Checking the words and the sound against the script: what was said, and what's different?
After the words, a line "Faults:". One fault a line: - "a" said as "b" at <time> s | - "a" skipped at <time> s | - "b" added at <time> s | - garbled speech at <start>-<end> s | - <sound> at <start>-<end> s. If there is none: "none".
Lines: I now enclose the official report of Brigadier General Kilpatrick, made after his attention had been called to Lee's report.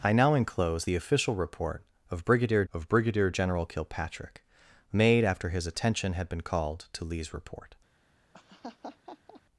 I now enclose the official report of Brigadier of Brigadier General Kilpatrick, made after his attention had been called to Lee's report.
Faults:
- "of Brigadier" added at 2.7 s
- laugh at 8.3-9.4 s